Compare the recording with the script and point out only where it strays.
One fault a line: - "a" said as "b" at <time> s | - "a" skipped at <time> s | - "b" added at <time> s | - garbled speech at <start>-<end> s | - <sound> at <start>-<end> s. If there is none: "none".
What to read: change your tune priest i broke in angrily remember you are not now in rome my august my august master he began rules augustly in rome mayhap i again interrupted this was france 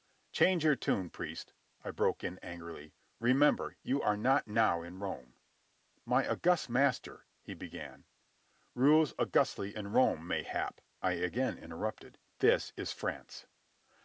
- "my august" skipped at 6.7 s
- "was" said as "is" at 12.8 s